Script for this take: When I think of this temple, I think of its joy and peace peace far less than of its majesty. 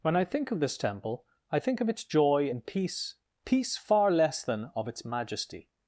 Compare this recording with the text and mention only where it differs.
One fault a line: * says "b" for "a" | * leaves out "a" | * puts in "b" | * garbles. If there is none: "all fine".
all fine